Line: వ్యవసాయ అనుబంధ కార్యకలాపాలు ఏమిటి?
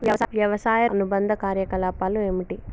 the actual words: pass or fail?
pass